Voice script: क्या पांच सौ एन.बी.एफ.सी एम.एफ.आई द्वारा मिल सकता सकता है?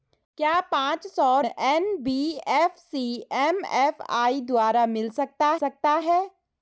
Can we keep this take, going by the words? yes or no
yes